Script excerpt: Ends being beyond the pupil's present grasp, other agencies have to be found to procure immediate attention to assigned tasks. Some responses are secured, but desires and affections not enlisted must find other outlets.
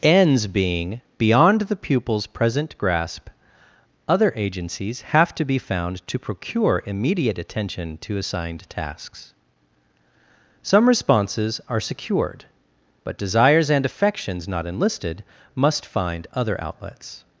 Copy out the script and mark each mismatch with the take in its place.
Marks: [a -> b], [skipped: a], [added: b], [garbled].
Ends being beyond the pupil's present grasp, other agencies have to be found to procure immediate attention to assigned tasks. Some responses are secured, but desires and affections not enlisted must find other outlets.